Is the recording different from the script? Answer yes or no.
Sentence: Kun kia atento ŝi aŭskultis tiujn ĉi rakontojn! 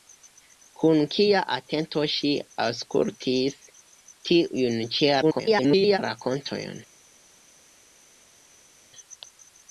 yes